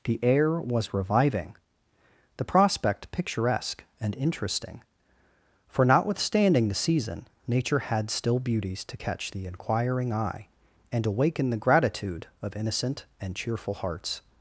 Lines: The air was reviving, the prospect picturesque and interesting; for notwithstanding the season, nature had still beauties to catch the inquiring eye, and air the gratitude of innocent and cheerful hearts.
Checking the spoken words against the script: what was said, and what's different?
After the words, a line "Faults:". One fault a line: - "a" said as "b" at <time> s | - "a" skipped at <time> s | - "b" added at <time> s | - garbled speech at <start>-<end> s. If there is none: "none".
The air was reviving, the prospect picturesque and interesting; for notwithstanding the season, nature had still beauties to catch the inquiring eye, and awaken the gratitude of innocent and cheerful hearts.
Faults:
- "air" said as "awaken" at 11.1 s